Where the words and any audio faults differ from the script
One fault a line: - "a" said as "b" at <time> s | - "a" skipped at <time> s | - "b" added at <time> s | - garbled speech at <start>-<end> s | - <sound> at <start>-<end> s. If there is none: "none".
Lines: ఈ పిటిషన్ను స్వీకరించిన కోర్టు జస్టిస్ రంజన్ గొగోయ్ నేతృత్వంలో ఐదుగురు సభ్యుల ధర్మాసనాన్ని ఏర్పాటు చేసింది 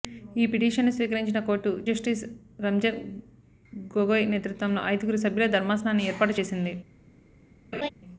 - laugh at 7.7-7.9 s